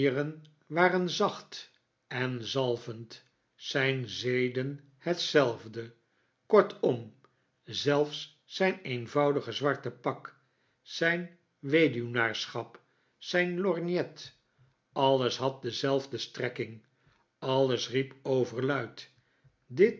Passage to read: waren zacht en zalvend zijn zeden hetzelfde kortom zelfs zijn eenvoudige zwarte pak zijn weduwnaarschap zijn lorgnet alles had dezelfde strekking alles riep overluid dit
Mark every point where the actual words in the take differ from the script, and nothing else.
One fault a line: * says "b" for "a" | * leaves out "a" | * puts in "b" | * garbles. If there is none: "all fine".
all fine